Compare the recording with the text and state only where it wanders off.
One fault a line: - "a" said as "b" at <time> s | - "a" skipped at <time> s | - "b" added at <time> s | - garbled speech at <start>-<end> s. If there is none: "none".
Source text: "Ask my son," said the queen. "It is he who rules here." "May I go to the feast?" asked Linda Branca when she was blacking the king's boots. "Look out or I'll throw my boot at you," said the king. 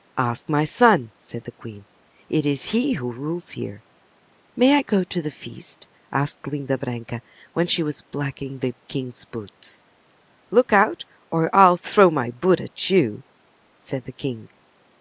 none